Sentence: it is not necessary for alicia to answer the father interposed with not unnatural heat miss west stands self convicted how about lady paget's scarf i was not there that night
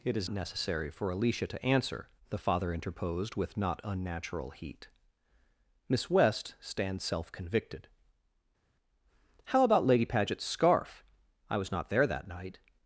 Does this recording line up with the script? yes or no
no